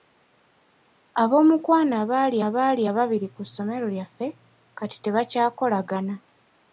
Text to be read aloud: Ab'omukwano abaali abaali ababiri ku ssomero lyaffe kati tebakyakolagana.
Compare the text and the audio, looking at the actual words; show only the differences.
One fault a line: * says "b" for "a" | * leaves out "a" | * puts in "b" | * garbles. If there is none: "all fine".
all fine